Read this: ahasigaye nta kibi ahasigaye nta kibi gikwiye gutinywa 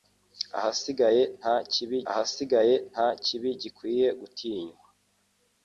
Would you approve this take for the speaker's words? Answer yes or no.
yes